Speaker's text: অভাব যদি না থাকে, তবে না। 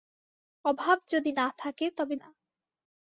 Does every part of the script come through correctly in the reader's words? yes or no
yes